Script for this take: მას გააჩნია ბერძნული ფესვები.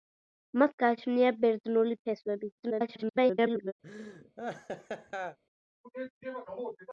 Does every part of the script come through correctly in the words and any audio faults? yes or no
no